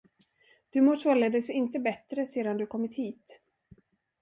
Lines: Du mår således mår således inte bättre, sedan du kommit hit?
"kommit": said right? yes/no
yes